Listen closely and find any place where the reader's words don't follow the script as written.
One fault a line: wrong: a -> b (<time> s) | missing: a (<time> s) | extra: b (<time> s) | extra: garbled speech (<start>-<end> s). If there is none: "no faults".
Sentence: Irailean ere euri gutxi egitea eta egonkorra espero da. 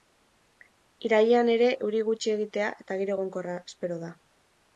extra: giro (3.0 s)